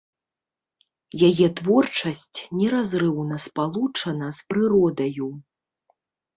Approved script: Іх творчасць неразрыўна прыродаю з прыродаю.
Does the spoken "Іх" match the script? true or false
false